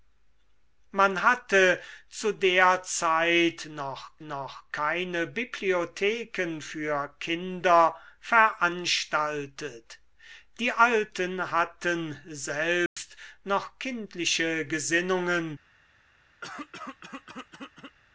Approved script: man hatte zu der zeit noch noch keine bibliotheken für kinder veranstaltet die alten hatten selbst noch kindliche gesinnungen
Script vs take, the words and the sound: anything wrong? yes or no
yes